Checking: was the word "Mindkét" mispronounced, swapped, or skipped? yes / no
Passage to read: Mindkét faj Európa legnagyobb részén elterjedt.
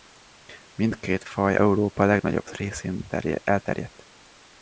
no